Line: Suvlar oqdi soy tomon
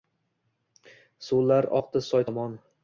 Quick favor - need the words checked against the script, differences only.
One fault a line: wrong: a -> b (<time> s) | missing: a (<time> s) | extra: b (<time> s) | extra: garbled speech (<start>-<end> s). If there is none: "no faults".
no faults